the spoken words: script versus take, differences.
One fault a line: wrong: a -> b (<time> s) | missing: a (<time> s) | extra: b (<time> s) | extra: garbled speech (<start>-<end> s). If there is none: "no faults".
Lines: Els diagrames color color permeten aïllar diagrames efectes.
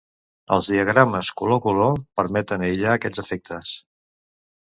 wrong: diagrames -> aquests (3.0 s)